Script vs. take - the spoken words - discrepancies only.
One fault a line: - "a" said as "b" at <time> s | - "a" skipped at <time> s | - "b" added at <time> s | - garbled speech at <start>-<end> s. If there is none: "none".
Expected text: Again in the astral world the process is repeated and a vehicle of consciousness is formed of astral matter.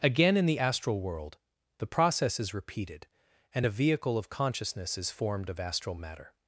none